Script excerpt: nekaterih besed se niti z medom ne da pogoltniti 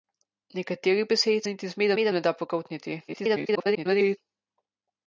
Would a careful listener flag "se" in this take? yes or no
yes